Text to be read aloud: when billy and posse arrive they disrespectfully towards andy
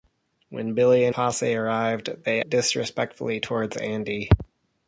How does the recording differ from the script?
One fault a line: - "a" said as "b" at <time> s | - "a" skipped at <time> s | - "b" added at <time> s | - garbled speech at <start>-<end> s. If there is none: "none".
none